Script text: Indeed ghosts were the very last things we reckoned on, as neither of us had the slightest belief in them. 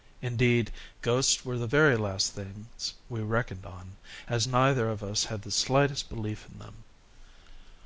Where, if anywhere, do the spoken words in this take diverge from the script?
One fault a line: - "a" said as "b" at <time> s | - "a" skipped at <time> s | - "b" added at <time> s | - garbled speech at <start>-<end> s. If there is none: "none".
none